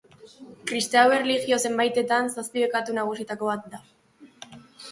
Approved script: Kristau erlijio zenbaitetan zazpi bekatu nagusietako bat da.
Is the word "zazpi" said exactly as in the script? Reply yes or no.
yes